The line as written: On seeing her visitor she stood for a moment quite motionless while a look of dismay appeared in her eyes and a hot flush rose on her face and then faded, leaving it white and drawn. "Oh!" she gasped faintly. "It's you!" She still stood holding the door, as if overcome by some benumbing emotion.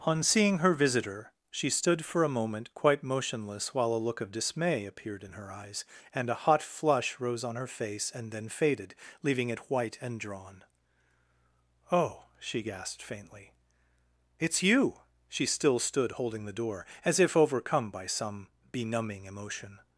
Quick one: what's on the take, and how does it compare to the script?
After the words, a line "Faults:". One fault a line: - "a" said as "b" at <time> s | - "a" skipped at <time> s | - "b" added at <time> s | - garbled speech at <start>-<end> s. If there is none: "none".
On seeing her visitor she stood for a moment quite motionless while a look of dismay appeared in her eyes and a hot flush rose on her face and then faded, leaving it white and drawn. "Oh!" she gasped faintly. "It's you!" She still stood holding the door, as if overcome by some benumbing emotion.
Faults:
none